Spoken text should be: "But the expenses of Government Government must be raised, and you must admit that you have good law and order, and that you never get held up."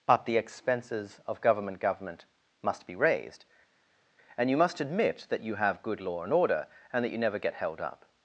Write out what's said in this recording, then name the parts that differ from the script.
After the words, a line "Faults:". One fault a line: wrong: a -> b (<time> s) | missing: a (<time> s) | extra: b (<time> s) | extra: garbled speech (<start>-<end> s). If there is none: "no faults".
"But the expenses of Government Government must be raised, and you must admit that you have good law and order, and that you never get held up."
Faults:
no faults